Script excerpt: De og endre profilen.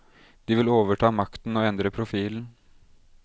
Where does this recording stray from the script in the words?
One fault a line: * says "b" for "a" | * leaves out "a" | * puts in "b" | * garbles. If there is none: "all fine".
* puts in "vil overta makten"